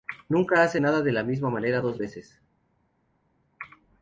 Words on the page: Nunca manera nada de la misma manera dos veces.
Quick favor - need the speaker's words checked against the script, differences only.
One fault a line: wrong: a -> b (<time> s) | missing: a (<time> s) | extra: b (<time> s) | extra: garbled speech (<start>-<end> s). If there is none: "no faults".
wrong: manera -> hace (0.6 s)